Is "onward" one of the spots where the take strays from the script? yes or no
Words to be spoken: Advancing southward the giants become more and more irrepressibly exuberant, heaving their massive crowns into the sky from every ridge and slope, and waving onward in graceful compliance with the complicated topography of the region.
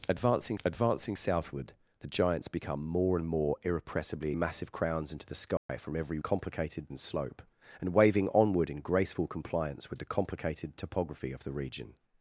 no